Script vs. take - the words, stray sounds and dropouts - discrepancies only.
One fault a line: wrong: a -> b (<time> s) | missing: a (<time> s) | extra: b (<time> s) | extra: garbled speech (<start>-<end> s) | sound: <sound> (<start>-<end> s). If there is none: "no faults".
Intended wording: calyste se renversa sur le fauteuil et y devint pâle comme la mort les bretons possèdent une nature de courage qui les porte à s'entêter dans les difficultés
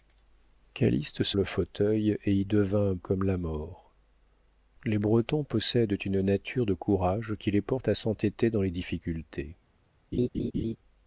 missing: renversa sur (1.4 s)
missing: pâle (3.0 s)
sound: laugh (10.1-10.8 s)